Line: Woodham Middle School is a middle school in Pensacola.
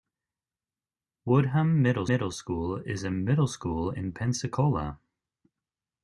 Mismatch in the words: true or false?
true